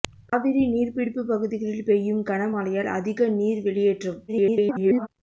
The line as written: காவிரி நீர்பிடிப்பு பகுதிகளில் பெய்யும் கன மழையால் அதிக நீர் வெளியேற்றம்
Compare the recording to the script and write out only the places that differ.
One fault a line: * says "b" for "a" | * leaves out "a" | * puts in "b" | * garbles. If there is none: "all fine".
* garbles